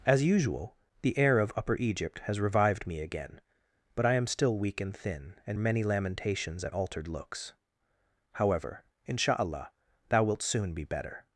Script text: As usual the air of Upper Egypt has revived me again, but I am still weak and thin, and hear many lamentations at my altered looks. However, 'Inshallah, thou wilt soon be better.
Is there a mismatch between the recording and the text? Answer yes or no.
yes